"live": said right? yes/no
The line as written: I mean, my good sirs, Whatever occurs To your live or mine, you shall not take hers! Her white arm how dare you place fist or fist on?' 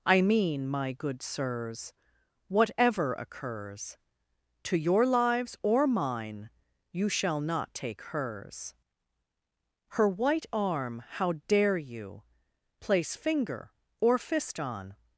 no